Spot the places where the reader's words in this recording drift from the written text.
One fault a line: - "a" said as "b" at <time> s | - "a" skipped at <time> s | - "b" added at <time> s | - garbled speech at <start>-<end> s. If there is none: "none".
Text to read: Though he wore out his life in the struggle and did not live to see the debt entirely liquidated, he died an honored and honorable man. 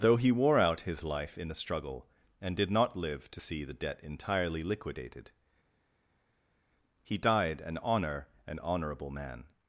- "honored" said as "honor" at 7.8 s